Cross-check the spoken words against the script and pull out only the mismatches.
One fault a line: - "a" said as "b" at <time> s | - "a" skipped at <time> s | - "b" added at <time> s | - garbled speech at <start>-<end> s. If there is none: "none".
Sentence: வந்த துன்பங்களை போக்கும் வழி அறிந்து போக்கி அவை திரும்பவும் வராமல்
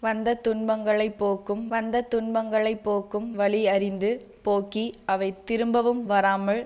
- "வந்த துன்பங்களை போக்கும்" added at 1.7 s